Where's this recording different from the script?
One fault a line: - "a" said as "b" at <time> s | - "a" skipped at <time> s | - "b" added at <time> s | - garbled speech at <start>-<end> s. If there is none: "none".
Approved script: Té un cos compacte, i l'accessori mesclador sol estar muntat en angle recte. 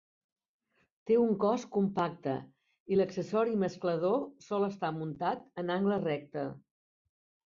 none